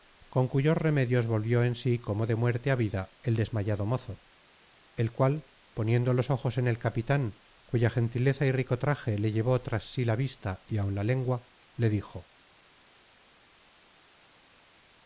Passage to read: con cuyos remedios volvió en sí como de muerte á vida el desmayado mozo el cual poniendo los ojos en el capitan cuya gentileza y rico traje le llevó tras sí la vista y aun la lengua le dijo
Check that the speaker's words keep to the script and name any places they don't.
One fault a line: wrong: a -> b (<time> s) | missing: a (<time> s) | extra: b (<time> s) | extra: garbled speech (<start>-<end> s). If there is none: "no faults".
no faults